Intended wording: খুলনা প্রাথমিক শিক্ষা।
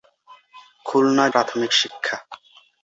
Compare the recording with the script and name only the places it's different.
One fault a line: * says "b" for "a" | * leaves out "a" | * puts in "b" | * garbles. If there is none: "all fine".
all fine